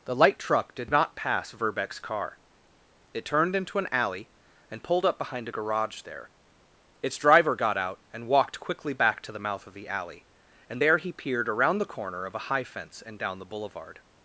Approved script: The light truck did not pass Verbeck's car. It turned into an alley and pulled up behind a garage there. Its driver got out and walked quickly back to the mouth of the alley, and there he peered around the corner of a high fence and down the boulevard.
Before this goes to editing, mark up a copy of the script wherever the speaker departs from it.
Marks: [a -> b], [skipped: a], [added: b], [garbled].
The light truck did not pass Verbeck's car. It turned into an alley and pulled up behind a garage there. Its driver got out and walked quickly back to the mouth of the alley, and there he peered around the corner of a high fence and down the boulevard.